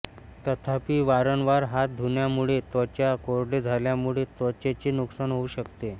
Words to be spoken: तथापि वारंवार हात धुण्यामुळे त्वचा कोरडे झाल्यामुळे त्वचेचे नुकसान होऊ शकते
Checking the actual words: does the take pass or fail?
pass